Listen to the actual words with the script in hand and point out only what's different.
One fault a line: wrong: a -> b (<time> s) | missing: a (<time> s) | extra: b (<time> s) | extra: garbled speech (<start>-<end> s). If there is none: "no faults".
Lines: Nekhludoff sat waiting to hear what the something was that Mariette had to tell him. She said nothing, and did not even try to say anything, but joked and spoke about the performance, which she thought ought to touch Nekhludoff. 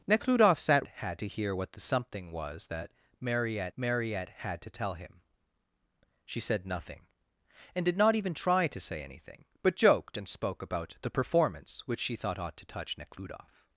wrong: waiting -> had (0.9 s)
extra: Mariette (3.8 s)